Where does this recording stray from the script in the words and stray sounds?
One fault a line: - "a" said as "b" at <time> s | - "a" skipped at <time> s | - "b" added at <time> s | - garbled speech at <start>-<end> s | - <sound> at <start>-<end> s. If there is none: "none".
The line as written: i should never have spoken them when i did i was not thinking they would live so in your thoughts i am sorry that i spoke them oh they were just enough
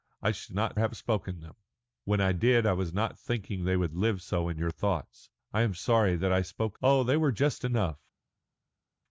- "never" said as "not" at 0.5 s
- "them" skipped at 6.8 s